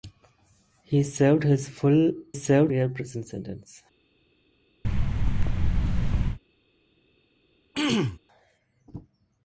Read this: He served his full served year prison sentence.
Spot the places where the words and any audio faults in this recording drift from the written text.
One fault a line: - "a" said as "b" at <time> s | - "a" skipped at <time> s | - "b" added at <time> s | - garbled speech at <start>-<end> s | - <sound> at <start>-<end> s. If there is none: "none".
- thud at 4.8-6.4 s
- throat clearing at 7.7-8.2 s